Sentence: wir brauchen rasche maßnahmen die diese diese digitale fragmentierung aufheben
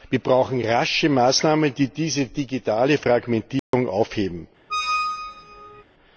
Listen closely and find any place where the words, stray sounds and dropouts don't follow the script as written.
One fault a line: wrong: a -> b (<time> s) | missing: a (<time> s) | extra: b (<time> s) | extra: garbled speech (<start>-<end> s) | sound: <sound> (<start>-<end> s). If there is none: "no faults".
missing: diese (2.2 s)
sound: dropout (3.6-3.7 s)
sound: squeak (4.7-5.8 s)